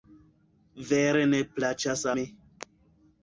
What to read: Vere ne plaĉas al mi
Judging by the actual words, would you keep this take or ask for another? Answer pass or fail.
fail